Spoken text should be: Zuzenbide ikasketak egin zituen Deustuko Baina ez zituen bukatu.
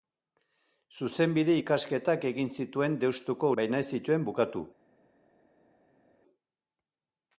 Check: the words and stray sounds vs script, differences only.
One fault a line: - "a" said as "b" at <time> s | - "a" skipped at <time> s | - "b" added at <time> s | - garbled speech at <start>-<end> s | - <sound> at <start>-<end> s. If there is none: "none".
none